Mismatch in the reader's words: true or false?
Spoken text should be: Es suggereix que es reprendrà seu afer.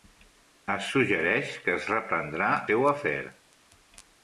false